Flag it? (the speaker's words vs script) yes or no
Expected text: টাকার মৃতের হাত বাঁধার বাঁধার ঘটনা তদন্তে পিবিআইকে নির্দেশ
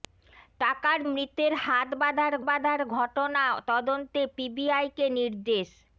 no